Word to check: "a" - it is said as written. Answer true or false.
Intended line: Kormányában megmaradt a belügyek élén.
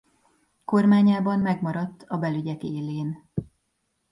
true